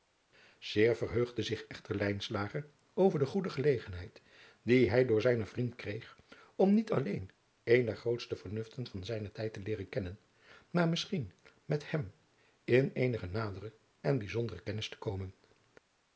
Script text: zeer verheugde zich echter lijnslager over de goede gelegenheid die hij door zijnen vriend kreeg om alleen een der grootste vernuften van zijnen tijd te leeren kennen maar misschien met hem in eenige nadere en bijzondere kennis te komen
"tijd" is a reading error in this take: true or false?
false